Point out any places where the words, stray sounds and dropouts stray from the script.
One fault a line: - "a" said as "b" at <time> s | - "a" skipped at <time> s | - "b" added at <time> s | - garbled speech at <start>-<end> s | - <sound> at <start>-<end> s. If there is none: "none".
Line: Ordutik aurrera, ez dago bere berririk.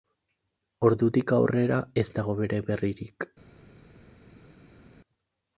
none